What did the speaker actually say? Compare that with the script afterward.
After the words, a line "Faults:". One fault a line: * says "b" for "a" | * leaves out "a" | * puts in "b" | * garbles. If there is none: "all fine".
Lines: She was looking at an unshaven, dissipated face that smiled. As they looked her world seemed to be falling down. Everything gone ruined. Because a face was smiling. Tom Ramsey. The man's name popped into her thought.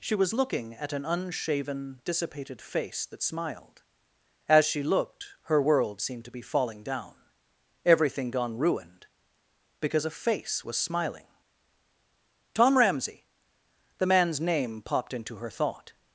She was looking at an unshaven, dissipated face that smiled. As she looked her world seemed to be falling down. Everything gone ruined. Because a face was smiling. Tom Ramsey. The man's name popped into her thought.
Faults:
* says "she" for "they"